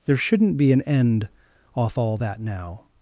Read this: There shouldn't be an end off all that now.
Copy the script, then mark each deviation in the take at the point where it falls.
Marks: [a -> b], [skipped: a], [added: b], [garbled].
There shouldn't be an end off all that now.